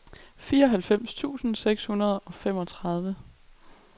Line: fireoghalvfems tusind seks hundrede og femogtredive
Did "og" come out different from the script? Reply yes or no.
no